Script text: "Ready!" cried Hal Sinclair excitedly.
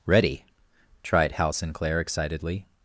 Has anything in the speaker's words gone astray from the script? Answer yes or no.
yes